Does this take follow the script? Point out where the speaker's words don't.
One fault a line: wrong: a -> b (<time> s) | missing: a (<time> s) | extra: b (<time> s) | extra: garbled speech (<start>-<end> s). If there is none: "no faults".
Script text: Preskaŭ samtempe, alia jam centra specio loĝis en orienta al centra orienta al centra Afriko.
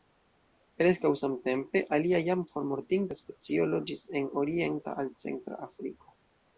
wrong: centra -> formortinta (2.5 s)
missing: orienta al centra (5.7 s)